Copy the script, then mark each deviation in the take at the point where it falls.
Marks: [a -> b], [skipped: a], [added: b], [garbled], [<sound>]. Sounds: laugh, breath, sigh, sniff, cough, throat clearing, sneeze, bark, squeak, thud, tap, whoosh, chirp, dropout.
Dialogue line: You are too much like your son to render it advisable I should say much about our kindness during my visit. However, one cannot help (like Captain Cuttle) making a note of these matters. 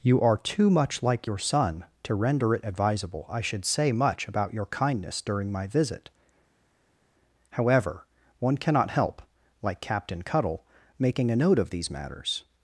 You are too much like your son to render it advisable I should say much about [our -> your] kindness during my visit. However, one cannot help (like Captain Cuttle) making a note of these matters.